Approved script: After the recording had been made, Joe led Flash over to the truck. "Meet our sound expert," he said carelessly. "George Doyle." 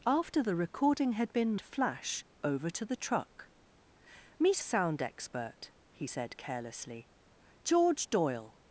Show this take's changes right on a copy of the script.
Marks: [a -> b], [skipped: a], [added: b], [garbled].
After the recording had been [skipped: made, Joe led] Flash over to the truck. "Meet [skipped: our] sound expert," he said carelessly. "George Doyle."